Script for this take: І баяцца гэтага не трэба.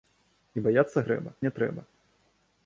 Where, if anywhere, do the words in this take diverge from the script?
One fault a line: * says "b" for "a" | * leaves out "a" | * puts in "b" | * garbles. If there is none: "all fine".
* says "трэба" for "гэтага"